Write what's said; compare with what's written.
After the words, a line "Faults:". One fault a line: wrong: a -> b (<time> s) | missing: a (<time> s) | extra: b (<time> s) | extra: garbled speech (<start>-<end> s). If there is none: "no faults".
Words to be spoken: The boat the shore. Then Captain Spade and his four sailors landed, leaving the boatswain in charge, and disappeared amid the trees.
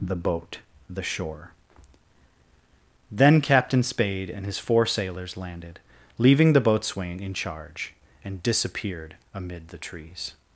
The boat the shore. Then Captain Spade and his four sailors landed, leaving the boatswain in charge, and disappeared amid the trees.
Faults:
no faults